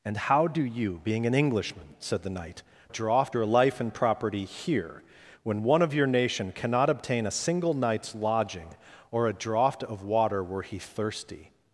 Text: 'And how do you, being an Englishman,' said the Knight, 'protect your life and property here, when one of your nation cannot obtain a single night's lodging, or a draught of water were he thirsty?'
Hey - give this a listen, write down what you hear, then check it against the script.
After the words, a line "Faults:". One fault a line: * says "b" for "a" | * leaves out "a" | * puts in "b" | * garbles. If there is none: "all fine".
'And how do you, being an Englishman,' said the Knight, 'draught your life and property here, when one of your nation cannot obtain a single night's lodging, or a draught of water were he thirsty?'
Faults:
* says "draught" for "protect"